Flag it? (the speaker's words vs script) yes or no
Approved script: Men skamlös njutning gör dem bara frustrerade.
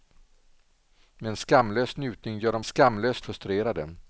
yes